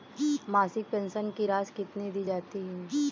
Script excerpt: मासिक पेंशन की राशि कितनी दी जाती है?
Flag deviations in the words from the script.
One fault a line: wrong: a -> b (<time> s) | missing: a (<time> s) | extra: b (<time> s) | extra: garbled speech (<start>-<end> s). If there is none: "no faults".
no faults